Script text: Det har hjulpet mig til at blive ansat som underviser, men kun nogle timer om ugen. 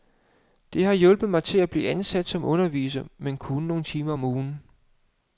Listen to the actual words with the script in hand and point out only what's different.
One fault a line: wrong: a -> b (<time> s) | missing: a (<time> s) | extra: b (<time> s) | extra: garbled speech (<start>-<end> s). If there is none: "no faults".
no faults